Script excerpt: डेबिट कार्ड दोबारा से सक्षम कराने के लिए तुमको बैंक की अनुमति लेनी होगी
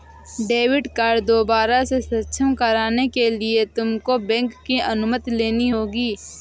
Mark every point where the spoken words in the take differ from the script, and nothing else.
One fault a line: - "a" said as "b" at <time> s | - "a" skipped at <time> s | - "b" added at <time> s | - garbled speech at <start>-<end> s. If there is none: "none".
none